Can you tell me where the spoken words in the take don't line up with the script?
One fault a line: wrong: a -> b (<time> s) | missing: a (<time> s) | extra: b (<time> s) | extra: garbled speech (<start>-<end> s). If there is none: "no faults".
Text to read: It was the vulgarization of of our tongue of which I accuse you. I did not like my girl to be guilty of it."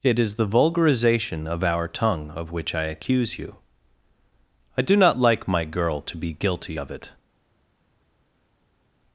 wrong: was -> is (0.2 s)
missing: of (1.6 s)
wrong: did -> do (4.8 s)